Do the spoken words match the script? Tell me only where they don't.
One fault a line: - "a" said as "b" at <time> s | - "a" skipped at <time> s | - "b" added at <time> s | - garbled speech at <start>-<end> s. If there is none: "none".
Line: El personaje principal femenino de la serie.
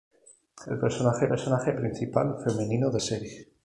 - "personaje" added at 1.3 s
- "la" skipped at 3.0 s